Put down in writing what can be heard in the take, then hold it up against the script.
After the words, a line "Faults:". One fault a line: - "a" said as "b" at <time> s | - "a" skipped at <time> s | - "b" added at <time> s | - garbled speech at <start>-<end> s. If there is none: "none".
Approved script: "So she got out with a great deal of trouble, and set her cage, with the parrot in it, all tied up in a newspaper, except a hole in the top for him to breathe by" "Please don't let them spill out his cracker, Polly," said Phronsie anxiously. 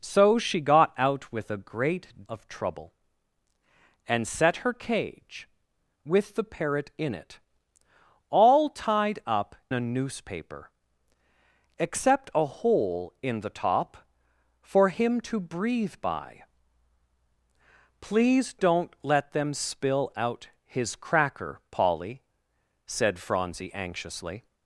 "So she got out with a great of trouble, and set her cage, with the parrot in it, all tied up a newspaper, except a hole in the top for him to breathe by" "Please don't let them spill out his cracker, Polly," said Phronsie anxiously.
Faults:
- "deal" skipped at 2.2 s
- "in" skipped at 9.6 s